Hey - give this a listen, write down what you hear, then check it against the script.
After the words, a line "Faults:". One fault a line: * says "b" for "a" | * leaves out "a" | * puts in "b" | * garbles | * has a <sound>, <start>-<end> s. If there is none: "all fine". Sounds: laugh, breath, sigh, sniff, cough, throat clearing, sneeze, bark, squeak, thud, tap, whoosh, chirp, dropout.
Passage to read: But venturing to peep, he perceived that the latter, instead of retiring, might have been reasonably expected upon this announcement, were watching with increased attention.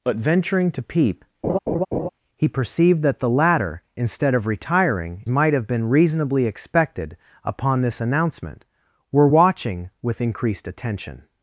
But venturing to peep, he perceived that the latter, instead of retiring, might have been reasonably expected upon this announcement, were watching with increased attention.
Faults:
* has a laugh, 1.4-2.1 s